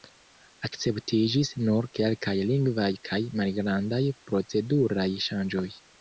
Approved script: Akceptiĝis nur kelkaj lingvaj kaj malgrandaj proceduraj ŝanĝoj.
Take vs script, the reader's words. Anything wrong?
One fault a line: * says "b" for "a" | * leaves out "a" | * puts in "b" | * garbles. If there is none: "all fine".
all fine